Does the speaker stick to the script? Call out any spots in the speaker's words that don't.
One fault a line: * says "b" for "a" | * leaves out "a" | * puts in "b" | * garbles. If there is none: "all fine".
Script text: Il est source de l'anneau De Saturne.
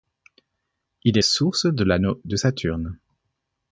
all fine